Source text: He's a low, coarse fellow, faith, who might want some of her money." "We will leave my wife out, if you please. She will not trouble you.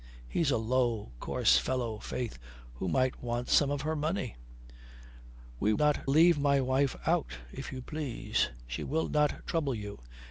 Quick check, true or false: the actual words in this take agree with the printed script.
false